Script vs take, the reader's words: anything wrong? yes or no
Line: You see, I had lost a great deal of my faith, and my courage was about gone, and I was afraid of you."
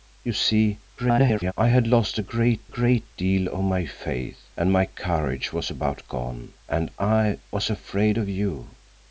yes